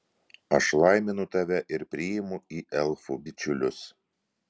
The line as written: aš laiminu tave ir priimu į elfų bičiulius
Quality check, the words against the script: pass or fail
pass